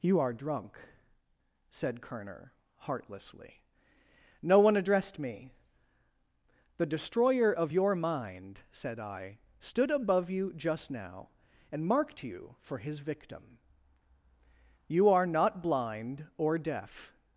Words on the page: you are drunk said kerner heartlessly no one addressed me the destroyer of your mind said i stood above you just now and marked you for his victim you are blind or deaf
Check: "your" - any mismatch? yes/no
no